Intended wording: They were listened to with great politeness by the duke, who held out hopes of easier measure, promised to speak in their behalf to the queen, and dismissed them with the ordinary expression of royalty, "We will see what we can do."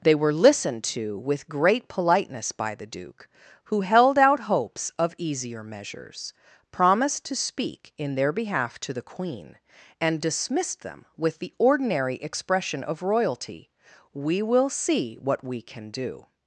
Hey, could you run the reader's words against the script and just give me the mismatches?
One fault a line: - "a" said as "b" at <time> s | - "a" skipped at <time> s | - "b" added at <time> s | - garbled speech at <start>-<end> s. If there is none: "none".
- "measure" said as "measures" at 5.6 s